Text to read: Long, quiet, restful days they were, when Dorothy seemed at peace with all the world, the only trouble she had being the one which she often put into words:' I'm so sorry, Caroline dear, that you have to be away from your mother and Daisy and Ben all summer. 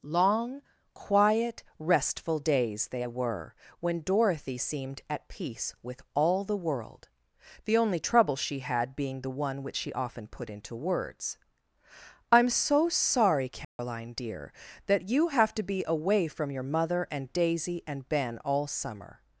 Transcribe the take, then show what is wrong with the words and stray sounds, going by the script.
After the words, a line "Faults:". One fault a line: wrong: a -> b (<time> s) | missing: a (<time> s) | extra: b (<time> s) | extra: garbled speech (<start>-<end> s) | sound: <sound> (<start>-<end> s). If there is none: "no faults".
Long, quiet, restful days they were, when Dorothy seemed at peace with all the world, the only trouble she had being the one which she often put into words:' I'm so sorry, Caroline dear, that you have to be away from your mother and Daisy and Ben all summer.
Faults:
sound: dropout (13.6-13.8 s)